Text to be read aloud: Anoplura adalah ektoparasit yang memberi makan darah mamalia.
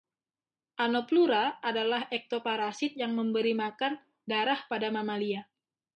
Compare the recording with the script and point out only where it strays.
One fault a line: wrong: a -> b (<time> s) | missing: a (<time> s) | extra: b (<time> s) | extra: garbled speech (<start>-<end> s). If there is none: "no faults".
extra: pada (4.6 s)